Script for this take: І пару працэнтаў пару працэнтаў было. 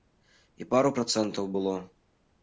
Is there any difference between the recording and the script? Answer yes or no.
yes